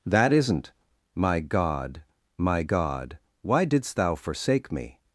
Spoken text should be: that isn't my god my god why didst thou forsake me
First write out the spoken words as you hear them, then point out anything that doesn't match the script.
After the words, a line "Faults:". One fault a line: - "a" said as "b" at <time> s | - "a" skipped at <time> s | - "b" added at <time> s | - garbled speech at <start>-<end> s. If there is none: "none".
that isn't my god my god why didst thou forsake me
Faults:
none